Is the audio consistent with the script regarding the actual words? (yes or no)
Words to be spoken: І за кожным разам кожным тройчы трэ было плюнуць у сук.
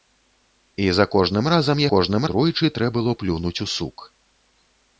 yes